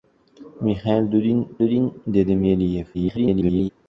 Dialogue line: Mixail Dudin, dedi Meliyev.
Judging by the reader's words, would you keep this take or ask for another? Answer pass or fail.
fail